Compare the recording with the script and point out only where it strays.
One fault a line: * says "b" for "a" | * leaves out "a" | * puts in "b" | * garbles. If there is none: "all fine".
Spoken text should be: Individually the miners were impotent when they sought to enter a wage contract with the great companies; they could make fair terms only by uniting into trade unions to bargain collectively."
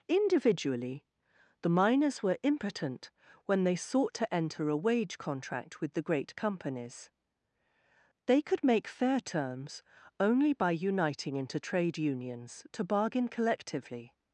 all fine